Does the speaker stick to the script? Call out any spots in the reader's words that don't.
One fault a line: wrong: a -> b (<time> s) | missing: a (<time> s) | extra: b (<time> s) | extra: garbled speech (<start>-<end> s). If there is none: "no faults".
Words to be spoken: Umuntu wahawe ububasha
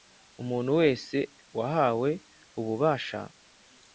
extra: wese (0.8 s)